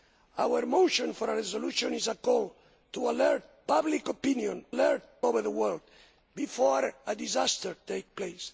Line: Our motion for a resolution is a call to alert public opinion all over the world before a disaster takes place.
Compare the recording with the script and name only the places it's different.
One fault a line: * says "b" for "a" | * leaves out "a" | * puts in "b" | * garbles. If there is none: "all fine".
* says "alert" for "all"